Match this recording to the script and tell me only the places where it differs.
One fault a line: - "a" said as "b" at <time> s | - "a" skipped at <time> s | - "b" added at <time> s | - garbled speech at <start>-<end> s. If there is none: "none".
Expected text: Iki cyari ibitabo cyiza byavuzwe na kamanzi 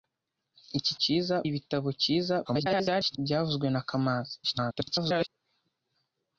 - "cyari" said as "cyiza" at 1.0 s
- garbled speech at 2.4-3.2 s
- garbled speech at 4.4-5.3 s